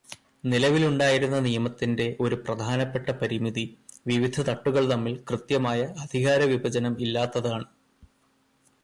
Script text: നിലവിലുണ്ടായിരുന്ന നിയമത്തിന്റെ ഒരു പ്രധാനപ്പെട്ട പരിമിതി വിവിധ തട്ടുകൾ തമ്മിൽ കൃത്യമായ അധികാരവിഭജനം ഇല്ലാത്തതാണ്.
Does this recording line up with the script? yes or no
yes